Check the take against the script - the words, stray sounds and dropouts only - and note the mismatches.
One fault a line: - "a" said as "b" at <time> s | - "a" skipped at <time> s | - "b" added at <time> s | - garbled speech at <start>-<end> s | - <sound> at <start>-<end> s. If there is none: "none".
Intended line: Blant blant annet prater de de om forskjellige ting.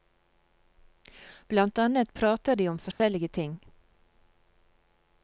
- "blant" skipped at 1.8 s
- "de" skipped at 2.7 s
- dropout at 2.9-3.0 s